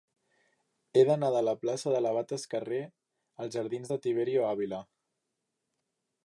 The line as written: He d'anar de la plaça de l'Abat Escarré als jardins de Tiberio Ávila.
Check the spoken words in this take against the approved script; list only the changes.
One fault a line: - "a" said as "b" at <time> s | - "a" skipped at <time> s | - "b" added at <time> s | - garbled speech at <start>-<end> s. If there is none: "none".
none